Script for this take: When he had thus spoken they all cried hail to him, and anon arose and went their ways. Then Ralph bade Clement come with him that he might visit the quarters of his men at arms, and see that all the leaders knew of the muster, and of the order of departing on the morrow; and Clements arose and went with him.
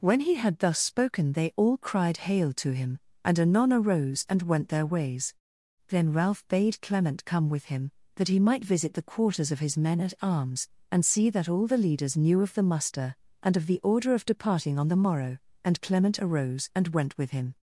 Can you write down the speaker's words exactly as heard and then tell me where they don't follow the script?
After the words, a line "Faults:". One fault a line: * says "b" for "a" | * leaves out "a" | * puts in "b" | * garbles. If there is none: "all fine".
When he had thus spoken they all cried hail to him, and anon arose and went their ways. Then Ralph bade Clement come with him that he might visit the quarters of his men at arms, and see that all the leaders knew of the muster, and of the order of departing on the morrow; and Clement arose and went with him.
Faults:
* says "Clement" for "Clements"